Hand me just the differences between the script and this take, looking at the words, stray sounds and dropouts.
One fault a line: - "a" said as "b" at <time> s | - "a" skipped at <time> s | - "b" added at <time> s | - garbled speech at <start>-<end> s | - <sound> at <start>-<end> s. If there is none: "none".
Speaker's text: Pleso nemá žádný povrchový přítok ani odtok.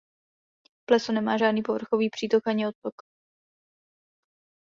none